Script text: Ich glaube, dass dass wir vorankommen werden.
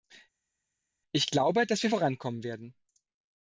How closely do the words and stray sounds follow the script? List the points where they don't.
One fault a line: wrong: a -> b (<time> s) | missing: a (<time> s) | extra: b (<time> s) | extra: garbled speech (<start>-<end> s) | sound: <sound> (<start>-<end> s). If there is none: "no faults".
missing: dass (1.8 s)